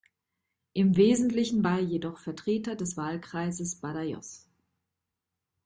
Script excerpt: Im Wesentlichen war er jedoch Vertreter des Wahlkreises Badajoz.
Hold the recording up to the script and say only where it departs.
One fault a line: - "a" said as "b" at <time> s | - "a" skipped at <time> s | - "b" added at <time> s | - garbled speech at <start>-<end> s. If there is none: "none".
none